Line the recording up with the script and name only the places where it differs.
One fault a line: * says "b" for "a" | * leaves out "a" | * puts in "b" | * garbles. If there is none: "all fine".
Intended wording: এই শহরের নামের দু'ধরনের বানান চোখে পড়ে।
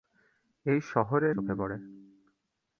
* leaves out "নামের দু'ধরনের বানান"